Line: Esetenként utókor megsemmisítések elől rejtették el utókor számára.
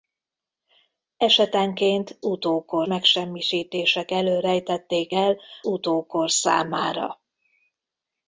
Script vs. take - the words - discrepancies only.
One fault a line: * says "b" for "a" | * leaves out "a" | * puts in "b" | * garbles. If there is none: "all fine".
all fine